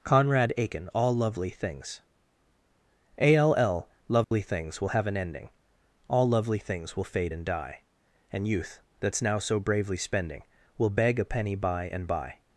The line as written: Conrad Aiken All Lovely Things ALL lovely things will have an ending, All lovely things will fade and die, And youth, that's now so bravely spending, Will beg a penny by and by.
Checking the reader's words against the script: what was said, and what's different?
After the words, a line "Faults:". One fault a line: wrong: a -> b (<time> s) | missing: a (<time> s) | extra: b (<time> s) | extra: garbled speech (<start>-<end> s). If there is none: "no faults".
Conrad Aiken All Lovely Things ALL lovely things will have an ending, All lovely things will fade and die, And youth, that's now so bravely spending, Will beg a penny by and by.
Faults:
no faults